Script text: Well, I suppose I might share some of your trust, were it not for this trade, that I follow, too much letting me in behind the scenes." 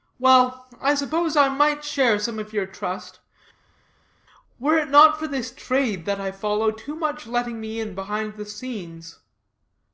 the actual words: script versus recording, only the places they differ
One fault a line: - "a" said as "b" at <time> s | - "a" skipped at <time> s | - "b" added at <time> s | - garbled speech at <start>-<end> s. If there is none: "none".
none